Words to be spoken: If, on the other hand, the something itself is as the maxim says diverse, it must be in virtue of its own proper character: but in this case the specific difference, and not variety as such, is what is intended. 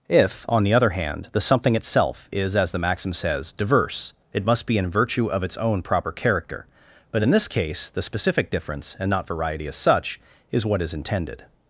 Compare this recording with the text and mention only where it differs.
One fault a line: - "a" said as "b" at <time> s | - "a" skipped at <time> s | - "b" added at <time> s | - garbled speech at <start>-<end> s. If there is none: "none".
none